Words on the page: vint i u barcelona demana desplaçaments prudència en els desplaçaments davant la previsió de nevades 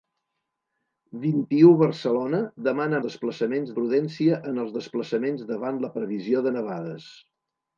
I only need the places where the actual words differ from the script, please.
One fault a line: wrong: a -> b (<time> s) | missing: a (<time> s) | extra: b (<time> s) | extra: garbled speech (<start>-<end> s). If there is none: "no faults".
no faults